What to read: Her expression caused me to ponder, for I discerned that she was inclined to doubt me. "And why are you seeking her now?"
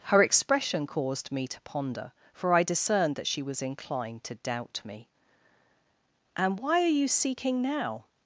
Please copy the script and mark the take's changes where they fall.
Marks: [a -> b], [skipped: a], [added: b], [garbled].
Her expression caused me to ponder, for I discerned that she was inclined to doubt me. "And why are you seeking [skipped: her] now?"